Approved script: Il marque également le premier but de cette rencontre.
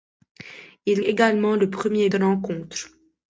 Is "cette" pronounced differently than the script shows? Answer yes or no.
yes